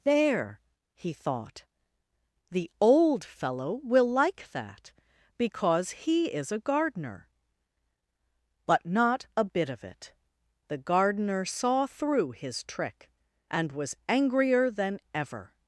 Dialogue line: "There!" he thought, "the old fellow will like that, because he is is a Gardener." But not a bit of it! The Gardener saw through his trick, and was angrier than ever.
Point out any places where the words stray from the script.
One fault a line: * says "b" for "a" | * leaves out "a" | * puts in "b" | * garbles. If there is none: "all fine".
* leaves out "is"